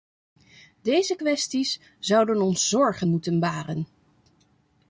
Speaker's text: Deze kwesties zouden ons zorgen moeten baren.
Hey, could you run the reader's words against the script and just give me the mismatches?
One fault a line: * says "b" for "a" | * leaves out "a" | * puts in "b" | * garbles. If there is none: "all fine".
all fine